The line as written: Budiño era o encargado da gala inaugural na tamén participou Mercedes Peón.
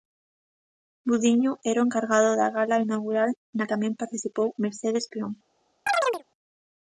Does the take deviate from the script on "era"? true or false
false